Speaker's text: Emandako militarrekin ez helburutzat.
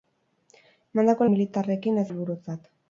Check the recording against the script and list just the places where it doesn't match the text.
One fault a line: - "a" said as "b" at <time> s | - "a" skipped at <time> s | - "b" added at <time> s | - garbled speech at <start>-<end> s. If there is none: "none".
none